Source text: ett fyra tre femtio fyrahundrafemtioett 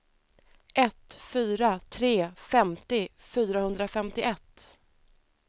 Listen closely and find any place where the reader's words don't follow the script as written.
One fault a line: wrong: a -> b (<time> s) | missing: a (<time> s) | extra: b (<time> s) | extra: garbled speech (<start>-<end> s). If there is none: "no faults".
no faults